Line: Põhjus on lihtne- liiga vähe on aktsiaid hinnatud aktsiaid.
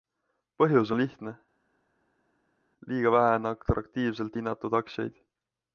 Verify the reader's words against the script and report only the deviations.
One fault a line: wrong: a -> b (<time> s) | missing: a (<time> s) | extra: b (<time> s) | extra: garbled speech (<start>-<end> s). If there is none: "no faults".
wrong: aktsiaid -> atraktiivselt (3.5 s)